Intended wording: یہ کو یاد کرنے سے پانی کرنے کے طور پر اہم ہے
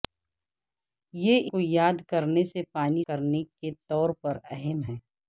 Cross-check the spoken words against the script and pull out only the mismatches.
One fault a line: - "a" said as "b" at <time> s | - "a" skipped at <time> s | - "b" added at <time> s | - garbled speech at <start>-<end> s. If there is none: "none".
none